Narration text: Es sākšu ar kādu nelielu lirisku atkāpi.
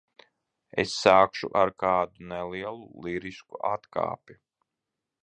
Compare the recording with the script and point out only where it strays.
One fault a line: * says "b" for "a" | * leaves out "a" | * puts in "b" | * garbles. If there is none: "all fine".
all fine